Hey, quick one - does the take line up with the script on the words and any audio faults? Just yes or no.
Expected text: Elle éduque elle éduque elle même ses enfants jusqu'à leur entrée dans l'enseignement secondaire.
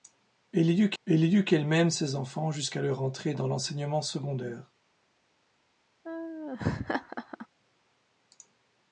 no